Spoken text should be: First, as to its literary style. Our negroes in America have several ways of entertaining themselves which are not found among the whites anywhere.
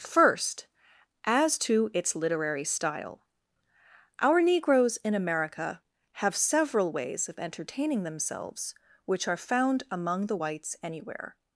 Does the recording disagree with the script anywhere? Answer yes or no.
yes